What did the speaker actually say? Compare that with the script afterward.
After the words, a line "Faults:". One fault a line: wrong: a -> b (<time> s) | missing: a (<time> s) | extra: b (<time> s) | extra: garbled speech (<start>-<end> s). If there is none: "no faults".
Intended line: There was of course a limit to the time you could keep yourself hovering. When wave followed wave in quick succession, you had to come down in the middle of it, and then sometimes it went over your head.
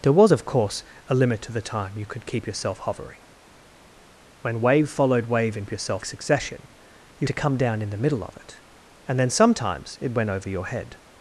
There was of course a limit to the time you could keep yourself hovering. When wave followed wave in yourself succession, you to come down in the middle of it, and then sometimes it went over your head.
Faults:
wrong: quick -> yourself (5.7 s)
missing: had (7.3 s)